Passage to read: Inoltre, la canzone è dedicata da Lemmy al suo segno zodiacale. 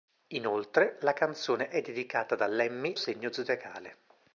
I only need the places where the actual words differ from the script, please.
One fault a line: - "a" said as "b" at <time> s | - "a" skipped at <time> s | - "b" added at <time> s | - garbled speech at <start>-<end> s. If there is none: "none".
- "al suo" skipped at 3.0 s